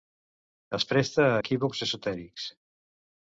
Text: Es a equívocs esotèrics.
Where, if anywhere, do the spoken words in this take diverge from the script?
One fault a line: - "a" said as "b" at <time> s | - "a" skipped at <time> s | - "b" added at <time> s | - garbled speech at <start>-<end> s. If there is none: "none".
- "presta" added at 0.9 s